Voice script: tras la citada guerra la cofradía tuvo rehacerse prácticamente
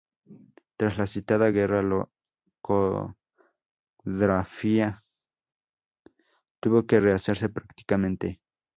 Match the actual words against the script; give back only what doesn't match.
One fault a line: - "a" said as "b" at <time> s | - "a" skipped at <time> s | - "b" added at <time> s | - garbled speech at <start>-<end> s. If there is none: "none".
- "que" added at 6.9 s